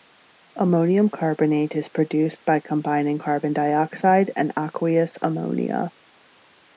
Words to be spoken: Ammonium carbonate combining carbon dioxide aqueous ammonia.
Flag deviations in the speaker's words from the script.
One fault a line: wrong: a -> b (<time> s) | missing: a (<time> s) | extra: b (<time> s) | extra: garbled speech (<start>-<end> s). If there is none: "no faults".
extra: is produced by (1.8 s)
extra: and (4.4 s)